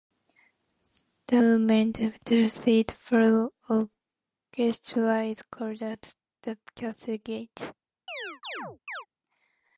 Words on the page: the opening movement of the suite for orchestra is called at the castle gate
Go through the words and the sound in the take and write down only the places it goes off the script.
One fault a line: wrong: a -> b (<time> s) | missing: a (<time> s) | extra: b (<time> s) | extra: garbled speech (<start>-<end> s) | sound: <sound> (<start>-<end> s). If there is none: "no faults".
missing: opening (1.4 s)
sound: chirp (8.1-9.1 s)